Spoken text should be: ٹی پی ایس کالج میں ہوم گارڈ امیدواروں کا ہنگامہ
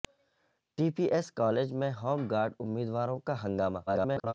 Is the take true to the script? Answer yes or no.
no